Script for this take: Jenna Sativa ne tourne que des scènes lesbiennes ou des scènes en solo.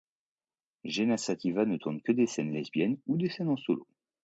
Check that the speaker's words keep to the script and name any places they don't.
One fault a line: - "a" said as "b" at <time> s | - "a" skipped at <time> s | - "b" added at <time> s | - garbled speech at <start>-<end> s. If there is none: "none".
none